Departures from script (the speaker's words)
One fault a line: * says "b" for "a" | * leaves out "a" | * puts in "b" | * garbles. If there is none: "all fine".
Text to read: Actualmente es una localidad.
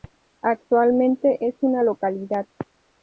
all fine